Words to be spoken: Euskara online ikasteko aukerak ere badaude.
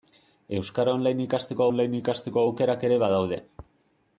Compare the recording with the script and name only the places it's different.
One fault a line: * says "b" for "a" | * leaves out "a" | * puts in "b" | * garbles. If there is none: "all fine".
* puts in "online ikasteko"